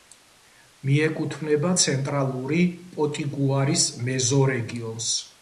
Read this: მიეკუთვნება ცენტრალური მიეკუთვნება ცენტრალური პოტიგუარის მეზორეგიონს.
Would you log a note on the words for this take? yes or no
yes